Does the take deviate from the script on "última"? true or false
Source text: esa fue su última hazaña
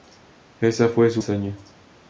true